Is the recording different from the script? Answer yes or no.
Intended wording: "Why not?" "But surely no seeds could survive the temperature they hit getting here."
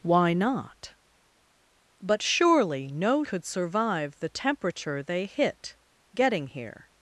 yes